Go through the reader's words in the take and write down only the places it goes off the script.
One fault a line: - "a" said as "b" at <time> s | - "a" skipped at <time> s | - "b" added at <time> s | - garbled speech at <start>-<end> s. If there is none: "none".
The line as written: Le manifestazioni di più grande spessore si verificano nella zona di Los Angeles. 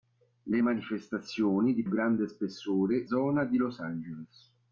- "più" skipped at 1.8 s
- "si verificano nella" skipped at 3.1 s